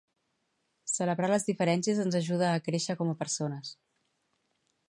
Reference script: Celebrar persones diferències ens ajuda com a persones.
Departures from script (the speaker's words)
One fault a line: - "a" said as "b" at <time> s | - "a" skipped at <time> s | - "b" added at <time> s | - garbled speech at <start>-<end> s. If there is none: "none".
- "persones" said as "les" at 1.3 s
- "a créixer" added at 2.5 s